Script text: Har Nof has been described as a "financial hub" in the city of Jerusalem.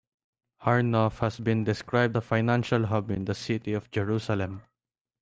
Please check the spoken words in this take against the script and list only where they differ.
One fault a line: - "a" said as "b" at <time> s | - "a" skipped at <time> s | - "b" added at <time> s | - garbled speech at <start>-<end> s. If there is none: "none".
- "as" skipped at 2.2 s